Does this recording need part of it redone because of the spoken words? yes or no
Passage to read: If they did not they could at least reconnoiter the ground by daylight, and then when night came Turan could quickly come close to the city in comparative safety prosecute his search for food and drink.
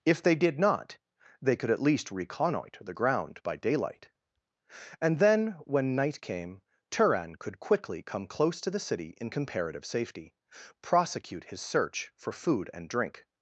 no